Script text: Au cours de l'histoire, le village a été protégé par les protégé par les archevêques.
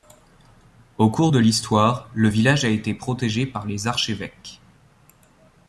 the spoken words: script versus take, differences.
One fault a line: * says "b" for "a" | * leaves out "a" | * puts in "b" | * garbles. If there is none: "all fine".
* leaves out "protégé par les"